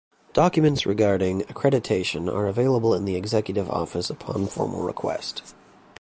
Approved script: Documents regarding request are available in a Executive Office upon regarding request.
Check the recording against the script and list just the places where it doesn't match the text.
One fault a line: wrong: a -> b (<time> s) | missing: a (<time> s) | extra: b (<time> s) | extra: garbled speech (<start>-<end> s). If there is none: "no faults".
wrong: request -> accreditation (1.4 s)
wrong: a -> the (3.0 s)
wrong: regarding -> formal (4.5 s)